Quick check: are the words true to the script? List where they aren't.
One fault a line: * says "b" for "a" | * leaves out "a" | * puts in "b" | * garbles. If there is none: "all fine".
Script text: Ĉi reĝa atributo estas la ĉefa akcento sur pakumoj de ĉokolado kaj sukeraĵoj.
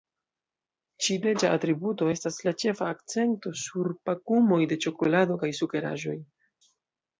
all fine